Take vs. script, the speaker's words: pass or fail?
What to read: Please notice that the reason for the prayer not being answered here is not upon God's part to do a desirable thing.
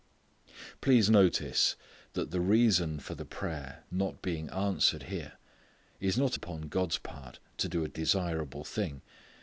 pass